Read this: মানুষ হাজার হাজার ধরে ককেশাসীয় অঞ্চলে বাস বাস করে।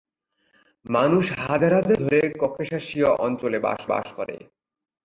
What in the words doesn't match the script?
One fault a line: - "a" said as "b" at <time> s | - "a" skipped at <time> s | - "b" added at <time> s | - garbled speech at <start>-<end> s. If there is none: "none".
none